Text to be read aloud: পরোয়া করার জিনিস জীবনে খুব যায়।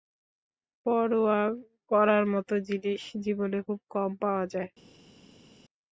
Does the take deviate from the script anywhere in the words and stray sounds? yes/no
yes